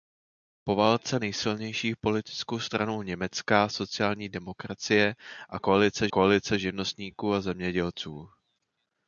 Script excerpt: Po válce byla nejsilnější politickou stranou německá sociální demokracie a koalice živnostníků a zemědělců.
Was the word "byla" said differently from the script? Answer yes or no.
yes